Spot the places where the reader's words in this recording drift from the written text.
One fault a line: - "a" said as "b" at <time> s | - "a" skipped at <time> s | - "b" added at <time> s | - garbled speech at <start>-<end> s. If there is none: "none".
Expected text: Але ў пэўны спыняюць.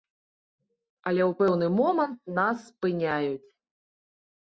- "момант нас" added at 1.8 s